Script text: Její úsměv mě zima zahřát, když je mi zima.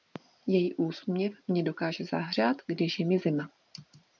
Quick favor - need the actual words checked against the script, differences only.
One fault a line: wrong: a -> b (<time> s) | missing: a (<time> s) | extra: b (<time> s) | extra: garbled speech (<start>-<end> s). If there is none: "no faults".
wrong: zima -> dokáže (1.6 s)